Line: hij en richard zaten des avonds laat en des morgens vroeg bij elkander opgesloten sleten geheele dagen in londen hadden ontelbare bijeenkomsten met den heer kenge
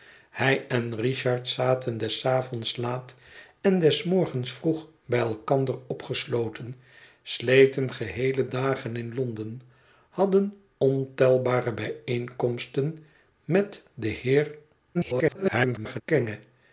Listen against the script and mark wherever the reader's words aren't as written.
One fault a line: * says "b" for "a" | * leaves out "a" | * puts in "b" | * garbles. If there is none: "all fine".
* garbles